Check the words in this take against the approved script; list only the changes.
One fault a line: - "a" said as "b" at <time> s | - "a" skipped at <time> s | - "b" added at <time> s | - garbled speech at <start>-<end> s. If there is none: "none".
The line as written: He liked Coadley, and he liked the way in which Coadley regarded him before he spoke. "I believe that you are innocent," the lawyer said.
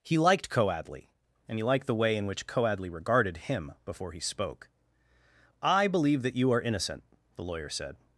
none